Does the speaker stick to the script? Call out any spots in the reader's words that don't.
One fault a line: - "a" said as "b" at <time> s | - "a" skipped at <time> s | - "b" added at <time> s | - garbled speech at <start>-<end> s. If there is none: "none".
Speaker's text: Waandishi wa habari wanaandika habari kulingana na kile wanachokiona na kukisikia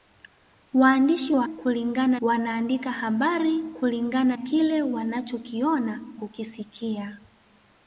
- "habari" said as "kulingana" at 1.4 s
- "na" skipped at 4.4 s
- "na" skipped at 6.0 s